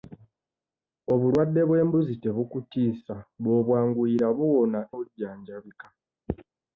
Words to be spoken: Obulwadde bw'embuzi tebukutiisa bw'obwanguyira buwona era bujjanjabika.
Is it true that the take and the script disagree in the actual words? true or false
true